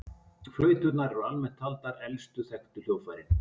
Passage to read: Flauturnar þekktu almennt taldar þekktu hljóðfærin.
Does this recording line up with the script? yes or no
no